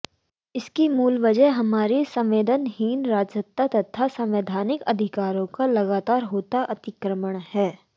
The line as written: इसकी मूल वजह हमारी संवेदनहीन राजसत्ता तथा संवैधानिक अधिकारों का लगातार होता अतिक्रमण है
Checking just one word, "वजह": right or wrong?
right